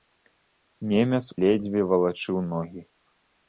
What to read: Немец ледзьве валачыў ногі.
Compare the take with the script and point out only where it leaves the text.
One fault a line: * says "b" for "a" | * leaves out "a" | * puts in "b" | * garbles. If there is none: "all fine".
all fine